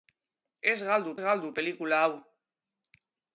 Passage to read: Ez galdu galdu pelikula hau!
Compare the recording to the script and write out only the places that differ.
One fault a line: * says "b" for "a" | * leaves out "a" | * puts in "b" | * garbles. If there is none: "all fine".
all fine